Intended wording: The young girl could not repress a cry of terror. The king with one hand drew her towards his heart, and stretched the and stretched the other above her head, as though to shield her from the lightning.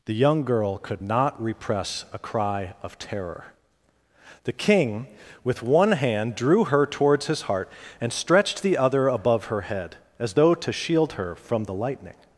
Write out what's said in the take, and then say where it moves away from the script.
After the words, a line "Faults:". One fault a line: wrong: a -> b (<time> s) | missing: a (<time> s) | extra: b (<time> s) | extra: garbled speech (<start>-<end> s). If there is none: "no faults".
The young girl could not repress a cry of terror. The king with one hand drew her towards his heart, and stretched the other above her head, as though to shield her from the lightning.
Faults:
missing: and stretched the (8.8 s)